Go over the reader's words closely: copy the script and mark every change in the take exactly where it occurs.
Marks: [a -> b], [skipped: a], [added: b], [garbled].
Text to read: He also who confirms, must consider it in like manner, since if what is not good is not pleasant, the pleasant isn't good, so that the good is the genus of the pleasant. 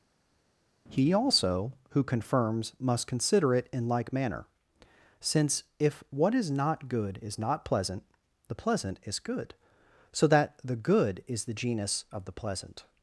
He also who confirms, must consider it in like manner, since if what is not good is not pleasant, the pleasant [isn't -> is] good, so that the good is the genus of the pleasant.